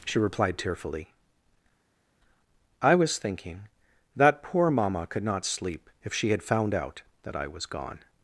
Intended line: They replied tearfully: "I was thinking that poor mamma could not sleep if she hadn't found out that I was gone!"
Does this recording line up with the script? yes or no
no